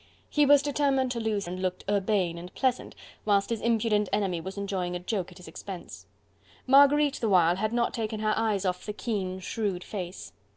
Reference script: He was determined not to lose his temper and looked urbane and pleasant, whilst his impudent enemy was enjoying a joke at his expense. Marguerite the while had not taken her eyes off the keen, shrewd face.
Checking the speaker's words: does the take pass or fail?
fail